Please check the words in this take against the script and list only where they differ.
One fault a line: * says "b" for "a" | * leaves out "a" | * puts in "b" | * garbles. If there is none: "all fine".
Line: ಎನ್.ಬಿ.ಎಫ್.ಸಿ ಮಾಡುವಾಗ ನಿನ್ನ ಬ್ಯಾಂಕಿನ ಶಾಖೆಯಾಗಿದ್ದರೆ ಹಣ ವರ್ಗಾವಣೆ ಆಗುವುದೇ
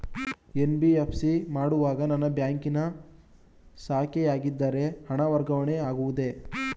* says "ನನ್ನ" for "ನಿನ್ನ"